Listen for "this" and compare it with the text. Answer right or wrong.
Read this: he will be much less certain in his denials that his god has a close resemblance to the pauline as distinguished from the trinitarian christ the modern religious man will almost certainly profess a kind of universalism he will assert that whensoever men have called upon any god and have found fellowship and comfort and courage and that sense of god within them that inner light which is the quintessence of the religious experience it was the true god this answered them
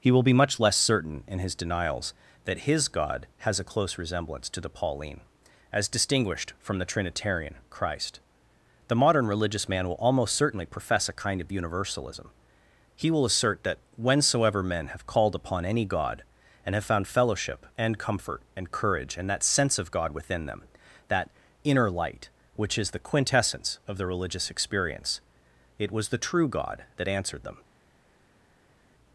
wrong